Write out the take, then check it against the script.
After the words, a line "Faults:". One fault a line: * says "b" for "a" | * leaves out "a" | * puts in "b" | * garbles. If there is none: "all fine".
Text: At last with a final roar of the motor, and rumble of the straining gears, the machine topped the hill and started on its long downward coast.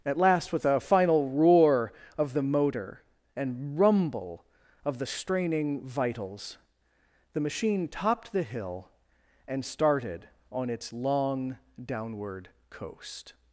At last with a final roar of the motor, and rumble of the straining vitals, the machine topped the hill and started on its long downward coast.
Faults:
* says "vitals" for "gears"